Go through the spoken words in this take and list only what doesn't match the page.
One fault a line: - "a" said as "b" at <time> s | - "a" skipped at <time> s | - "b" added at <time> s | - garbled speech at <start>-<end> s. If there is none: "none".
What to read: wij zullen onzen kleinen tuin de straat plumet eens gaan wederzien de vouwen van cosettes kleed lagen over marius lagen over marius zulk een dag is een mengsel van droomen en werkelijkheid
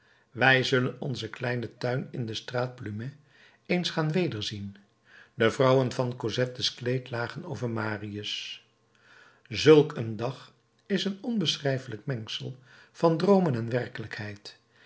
- "in" added at 2.1 s
- "lagen over marius" skipped at 8.7 s
- "onbeschrijfelijk" added at 11.2 s